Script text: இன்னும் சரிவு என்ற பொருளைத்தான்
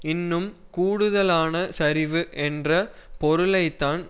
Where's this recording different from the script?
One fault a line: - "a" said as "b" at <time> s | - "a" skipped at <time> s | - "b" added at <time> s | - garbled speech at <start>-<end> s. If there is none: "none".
- "கூடுதலான" added at 0.7 s